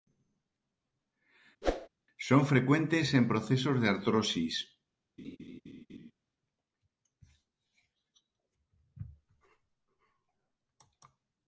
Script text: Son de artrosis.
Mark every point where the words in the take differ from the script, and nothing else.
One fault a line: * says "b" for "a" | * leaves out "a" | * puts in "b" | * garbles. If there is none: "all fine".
* puts in "frecuentes en procesos"